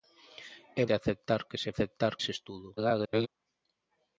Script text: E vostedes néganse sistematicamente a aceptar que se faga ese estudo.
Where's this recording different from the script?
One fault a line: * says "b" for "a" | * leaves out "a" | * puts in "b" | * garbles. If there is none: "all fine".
* leaves out "vostedes néganse sistematicamente"
* says "aceptar" for "faga"
* garbles